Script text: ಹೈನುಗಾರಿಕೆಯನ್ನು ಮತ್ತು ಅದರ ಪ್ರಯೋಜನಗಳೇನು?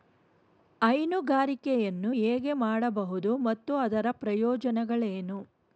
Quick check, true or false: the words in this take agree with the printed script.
false